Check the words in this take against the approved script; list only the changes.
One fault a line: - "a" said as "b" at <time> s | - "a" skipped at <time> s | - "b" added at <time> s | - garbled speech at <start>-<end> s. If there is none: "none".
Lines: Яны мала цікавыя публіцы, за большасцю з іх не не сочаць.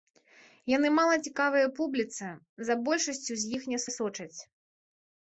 none